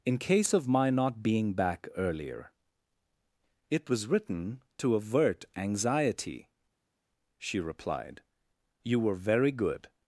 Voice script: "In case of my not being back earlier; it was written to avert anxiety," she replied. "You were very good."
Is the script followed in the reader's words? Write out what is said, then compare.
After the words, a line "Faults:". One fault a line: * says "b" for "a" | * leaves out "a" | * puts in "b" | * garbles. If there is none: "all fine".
"In case of my not being back earlier; it was written to avert anxiety," she replied. "You were very good."
Faults:
all fine